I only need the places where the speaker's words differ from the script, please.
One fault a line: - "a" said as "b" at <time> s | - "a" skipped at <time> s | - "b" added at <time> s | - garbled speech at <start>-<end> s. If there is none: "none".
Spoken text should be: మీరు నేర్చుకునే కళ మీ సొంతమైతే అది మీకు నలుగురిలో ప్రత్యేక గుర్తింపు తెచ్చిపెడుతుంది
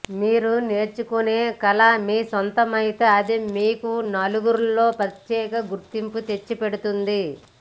none